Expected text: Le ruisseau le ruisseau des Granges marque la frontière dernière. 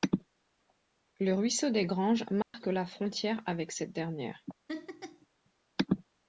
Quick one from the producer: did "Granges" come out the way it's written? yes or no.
yes